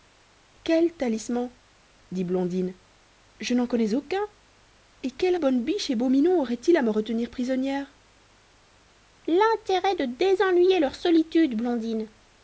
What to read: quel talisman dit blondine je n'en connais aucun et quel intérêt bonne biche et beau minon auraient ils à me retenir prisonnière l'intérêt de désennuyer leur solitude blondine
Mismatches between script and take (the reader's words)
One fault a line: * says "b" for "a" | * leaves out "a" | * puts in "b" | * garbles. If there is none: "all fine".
* leaves out "intérêt"